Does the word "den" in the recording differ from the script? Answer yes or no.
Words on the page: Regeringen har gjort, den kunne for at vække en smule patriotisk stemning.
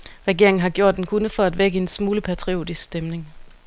no